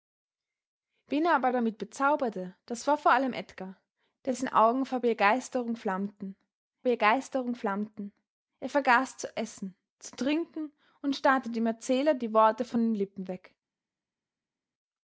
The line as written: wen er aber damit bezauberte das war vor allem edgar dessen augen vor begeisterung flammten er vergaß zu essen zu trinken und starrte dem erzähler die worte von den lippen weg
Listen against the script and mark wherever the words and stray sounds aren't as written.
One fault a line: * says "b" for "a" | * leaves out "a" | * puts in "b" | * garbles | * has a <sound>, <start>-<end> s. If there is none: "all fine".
* puts in "begeisterung flammten"